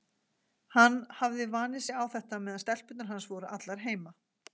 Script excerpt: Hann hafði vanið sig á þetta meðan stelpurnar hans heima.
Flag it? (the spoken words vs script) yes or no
yes